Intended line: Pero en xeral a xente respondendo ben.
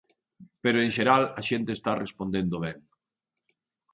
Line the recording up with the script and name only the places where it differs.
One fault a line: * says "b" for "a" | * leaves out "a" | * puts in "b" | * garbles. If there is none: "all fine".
* puts in "está"